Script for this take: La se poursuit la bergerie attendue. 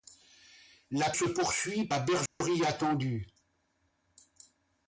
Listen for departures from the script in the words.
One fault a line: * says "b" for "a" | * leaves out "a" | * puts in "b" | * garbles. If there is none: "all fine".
all fine